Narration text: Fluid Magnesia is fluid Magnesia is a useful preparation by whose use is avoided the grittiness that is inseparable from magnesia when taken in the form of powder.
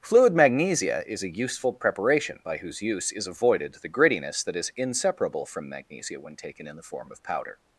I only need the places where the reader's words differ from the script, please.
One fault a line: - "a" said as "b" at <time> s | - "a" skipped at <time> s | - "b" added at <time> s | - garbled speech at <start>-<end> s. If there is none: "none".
- "fluid Magnesia is" skipped at 1.2 s